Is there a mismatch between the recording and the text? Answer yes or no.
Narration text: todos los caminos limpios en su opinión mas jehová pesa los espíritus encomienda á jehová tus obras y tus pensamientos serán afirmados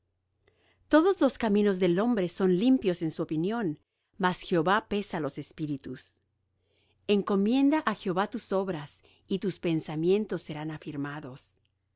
yes